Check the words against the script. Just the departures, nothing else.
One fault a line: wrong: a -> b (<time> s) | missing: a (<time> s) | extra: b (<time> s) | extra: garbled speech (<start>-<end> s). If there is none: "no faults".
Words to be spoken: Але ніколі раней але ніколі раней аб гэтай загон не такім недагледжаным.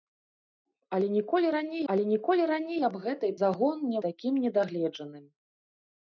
no faults